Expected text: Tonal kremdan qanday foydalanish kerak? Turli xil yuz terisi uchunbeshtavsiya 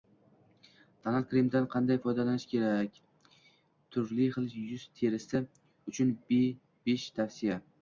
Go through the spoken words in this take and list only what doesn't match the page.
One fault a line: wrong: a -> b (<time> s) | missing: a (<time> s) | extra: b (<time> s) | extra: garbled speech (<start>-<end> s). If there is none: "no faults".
no faults